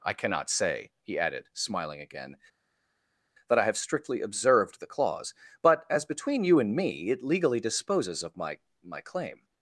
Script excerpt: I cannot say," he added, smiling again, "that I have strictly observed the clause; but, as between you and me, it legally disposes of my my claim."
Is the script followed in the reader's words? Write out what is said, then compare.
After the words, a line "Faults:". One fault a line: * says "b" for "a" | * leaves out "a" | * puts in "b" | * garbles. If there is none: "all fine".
I cannot say," he added, smiling again, "that I have strictly observed the clause; but, as between you and me, it legally disposes of my my claim."
Faults:
all fine